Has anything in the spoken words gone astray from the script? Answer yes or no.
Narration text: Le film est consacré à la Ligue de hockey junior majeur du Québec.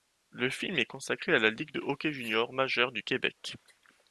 no